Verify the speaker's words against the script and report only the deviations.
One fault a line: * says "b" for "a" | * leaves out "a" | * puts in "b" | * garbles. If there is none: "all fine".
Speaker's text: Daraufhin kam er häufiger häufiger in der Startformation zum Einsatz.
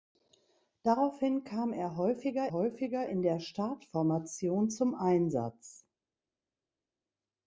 all fine